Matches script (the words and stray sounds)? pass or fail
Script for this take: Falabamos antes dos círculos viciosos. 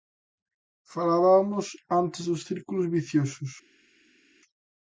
pass